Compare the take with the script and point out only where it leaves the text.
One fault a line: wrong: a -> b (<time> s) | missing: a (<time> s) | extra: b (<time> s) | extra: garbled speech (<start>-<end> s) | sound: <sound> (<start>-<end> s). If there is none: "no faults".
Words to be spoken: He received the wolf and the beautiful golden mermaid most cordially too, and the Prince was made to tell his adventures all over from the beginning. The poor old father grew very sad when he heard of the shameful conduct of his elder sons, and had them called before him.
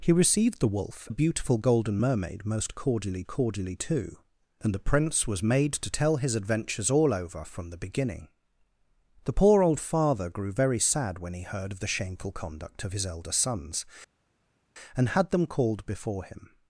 missing: and (1.1 s)
extra: cordially (3.3 s)